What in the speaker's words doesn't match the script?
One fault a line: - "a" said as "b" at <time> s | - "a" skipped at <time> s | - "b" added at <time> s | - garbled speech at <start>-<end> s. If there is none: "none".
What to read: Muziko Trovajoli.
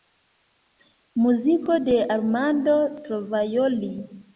- "de Armando" added at 1.8 s